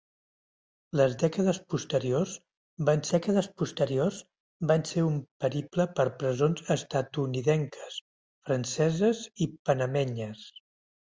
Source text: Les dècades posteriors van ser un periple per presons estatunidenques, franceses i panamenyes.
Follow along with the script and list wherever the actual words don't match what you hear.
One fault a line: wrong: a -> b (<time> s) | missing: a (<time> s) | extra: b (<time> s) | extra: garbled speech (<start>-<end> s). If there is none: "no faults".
extra: dècades posteriors van (3.1 s)